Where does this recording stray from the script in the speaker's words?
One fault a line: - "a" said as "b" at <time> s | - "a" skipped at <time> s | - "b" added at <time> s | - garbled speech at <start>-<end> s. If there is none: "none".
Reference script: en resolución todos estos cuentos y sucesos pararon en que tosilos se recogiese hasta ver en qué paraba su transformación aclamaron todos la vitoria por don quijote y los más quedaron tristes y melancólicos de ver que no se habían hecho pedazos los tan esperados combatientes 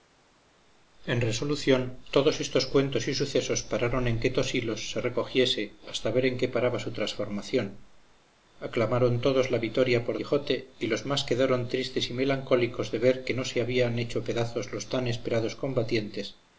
- "don" skipped at 10.2 s